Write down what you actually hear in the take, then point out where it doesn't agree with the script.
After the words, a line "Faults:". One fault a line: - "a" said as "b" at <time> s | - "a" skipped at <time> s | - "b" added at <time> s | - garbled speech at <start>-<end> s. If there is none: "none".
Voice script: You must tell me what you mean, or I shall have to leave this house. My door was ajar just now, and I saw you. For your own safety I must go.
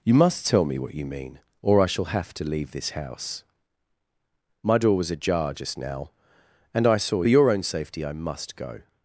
You must tell me what you mean, or I shall have to leave this house. My door was ajar just now, and I saw your own safety I must go.
Faults:
- "you For" skipped at 7.2 s